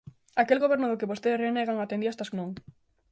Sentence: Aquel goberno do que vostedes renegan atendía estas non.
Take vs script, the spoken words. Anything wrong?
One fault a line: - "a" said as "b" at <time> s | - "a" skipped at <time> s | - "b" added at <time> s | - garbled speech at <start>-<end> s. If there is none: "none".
none